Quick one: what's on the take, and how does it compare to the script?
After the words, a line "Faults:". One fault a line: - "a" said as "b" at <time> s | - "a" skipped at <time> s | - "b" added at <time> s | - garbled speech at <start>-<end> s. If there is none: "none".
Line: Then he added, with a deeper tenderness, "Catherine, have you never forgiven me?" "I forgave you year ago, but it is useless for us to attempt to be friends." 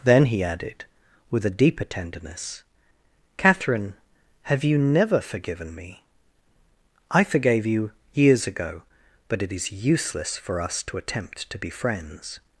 Then he added, with a deeper tenderness, "Catherine, have you never forgiven me?" "I forgave you years ago, but it is useless for us to attempt to be friends."
Faults:
- "year" said as "years" at 8.1 s